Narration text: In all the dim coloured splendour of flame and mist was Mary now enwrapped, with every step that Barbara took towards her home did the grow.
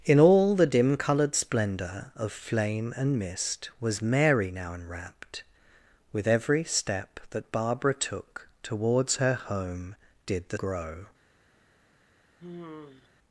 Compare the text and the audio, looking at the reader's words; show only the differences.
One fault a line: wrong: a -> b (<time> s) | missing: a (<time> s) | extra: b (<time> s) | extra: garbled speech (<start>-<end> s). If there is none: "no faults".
no faults